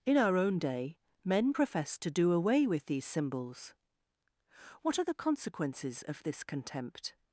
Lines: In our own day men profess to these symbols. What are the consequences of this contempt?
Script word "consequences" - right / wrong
right